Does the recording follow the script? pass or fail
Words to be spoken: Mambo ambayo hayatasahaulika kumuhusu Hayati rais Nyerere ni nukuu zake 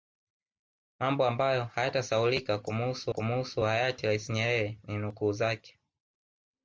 fail